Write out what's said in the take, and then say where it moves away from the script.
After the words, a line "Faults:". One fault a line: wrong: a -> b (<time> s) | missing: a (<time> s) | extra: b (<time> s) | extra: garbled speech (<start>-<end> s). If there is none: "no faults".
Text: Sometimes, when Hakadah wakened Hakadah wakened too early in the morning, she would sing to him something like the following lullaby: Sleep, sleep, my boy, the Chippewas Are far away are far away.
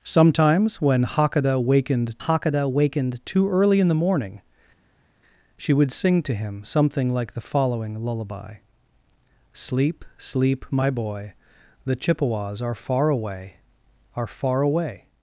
Sometimes, when Hakadah wakened Hakadah wakened too early in the morning, she would sing to him something like the following lullaby: Sleep, sleep, my boy, the Chippewas Are far away are far away.
Faults:
no faults